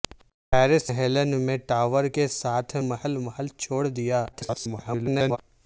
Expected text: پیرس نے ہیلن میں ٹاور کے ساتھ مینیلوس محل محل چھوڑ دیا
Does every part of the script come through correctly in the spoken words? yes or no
no